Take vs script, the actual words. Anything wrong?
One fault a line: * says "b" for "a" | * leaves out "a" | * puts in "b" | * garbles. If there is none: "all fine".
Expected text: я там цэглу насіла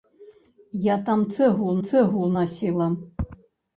* puts in "цэглу"